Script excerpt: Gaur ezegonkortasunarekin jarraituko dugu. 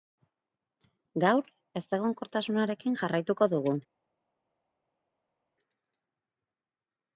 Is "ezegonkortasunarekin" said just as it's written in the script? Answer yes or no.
yes